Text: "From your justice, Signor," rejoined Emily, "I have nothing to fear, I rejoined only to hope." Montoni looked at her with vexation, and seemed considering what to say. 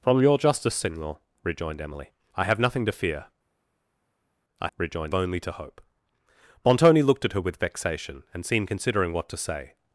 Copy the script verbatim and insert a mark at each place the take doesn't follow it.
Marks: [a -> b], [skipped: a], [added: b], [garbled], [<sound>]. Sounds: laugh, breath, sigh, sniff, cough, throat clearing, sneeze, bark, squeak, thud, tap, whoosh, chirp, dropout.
"From your justice, Signor," rejoined Emily, "I have nothing to fear, I rejoined only to hope." Montoni looked at her with vexation, and seemed considering what to say.